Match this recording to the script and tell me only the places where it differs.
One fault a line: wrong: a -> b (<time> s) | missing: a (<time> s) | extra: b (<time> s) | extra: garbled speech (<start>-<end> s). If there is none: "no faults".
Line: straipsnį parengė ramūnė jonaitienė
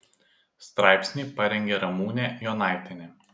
no faults